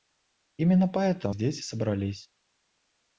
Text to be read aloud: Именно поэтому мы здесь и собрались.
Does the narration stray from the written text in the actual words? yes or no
yes